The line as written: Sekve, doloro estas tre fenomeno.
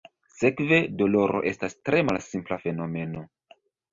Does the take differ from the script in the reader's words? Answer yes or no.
yes